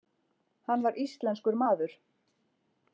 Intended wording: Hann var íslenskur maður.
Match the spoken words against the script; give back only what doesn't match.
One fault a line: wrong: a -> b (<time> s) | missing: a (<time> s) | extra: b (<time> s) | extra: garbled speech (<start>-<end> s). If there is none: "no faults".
no faults